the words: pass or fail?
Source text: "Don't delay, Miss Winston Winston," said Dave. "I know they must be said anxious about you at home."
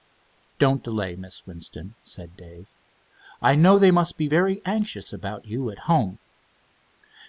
fail